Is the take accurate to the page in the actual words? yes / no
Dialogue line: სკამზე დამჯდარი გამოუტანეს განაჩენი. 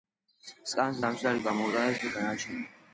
yes